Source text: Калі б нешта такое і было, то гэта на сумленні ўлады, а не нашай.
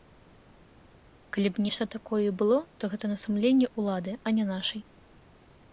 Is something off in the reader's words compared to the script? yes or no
no